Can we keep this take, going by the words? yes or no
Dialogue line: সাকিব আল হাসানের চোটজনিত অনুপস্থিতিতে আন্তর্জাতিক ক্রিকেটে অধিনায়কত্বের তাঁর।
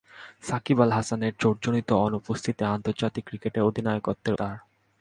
yes